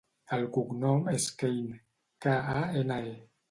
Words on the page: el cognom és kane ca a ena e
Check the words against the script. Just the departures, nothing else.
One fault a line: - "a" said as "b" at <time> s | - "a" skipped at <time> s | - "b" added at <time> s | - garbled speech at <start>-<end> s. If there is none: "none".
none